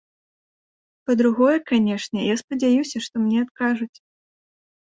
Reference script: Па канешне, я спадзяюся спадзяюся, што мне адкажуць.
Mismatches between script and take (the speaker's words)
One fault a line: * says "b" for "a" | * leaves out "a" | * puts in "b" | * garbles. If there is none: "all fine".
* puts in "другое"
* leaves out "спадзяюся"